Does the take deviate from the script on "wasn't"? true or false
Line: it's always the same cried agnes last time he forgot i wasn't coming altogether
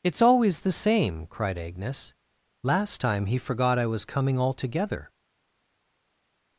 true